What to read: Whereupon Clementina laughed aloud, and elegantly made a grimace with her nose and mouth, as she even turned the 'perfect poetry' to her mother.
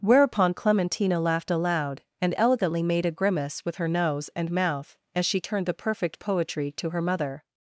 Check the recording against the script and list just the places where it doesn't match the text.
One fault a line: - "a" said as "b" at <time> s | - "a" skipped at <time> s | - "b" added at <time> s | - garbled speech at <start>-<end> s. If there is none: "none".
- "even" skipped at 5.4 s